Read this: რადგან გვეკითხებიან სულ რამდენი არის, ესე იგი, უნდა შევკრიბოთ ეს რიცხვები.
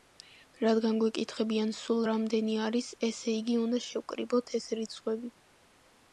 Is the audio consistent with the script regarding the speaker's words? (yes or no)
yes